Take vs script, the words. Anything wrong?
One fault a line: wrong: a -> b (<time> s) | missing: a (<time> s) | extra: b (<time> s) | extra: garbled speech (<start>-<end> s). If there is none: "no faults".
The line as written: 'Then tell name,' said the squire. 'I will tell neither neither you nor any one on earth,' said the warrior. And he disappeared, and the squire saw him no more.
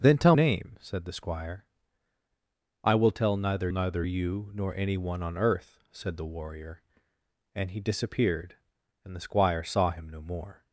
no faults